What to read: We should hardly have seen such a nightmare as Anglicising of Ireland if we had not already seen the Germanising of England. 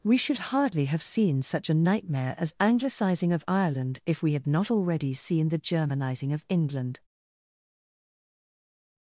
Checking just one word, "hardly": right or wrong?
right